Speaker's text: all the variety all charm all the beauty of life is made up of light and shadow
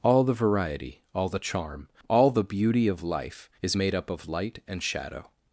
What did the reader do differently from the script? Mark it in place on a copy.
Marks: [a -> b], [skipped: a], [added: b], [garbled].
all the variety all [added: the] charm all the beauty of life is made up of light and shadow